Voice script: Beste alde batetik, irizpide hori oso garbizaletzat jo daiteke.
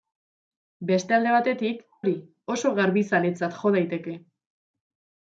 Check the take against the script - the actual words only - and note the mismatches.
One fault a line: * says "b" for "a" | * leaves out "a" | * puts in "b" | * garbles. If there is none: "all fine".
* leaves out "irizpide"